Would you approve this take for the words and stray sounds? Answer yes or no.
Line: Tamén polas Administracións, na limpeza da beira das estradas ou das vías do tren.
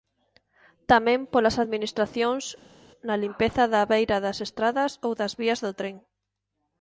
yes